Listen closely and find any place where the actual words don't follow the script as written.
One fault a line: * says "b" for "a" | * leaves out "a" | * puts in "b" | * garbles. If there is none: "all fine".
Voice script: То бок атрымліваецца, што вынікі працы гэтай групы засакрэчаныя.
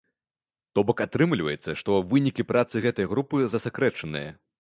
all fine